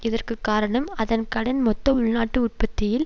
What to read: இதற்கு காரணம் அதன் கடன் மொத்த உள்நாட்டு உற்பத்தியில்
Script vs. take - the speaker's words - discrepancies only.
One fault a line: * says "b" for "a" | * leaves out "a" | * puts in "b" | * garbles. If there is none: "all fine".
all fine